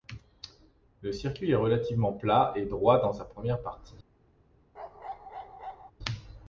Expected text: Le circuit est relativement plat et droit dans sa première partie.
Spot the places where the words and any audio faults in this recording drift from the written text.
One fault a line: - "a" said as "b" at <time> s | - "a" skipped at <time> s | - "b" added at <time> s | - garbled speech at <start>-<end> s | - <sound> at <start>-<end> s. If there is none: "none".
- bark at 4.7-5.9 s